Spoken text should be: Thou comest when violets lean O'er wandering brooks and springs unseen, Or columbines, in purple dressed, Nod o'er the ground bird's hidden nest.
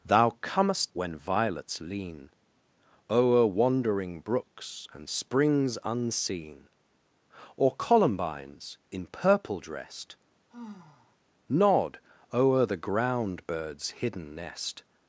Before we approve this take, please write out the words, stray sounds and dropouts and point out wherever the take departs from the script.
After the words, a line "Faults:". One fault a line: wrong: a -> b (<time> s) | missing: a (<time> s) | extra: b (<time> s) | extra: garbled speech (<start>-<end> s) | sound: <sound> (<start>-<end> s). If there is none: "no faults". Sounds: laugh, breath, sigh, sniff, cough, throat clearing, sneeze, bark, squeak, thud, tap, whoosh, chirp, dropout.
Thou comest when violets lean O'er wandering brooks and springs unseen, Or columbines, in purple dressed, Nod o'er the ground bird's hidden nest.
Faults:
sound: sigh (10.5-11.2 s)